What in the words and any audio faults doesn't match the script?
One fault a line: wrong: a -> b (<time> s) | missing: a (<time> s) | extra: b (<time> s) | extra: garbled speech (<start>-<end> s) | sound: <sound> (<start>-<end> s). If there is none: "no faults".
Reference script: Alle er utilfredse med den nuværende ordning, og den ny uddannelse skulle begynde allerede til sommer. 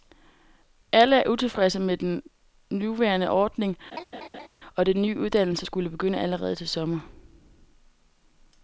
sound: laugh (3.9-4.5 s)